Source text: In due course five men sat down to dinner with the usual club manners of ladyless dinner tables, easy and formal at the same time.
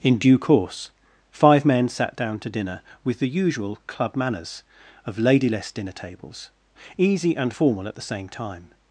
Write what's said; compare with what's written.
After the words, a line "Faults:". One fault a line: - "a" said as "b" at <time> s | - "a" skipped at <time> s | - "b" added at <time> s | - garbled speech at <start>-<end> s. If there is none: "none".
In due course five men sat down to dinner with the usual club manners of ladyless dinner tables, easy and formal at the same time.
Faults:
none